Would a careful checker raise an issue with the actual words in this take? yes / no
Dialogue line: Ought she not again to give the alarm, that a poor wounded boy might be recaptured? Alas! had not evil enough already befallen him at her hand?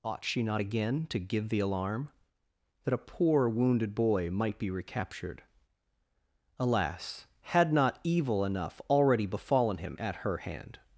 no